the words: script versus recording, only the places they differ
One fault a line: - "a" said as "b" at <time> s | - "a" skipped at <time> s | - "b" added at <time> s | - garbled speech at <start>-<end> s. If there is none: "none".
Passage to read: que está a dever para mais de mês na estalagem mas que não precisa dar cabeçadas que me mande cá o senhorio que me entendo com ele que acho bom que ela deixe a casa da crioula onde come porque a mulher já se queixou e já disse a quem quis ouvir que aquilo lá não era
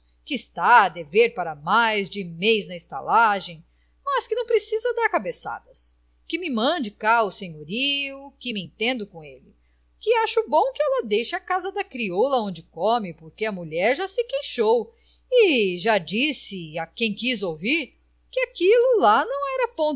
none